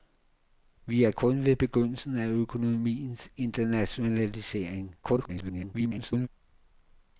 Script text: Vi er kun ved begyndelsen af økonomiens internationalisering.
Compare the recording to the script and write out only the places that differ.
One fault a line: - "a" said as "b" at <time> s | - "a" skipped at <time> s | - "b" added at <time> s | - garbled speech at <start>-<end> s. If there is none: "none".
- garbled speech at 5.0-6.3 s